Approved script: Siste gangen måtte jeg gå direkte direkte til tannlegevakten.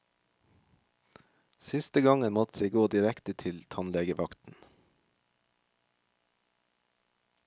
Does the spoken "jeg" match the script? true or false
true